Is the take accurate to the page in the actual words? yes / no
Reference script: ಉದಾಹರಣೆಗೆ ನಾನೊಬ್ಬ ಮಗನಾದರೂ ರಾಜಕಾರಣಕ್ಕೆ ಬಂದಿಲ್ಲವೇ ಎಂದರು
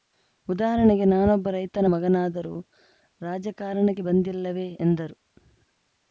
no